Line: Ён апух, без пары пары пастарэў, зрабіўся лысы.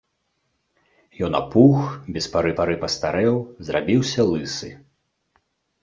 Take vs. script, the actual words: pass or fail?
pass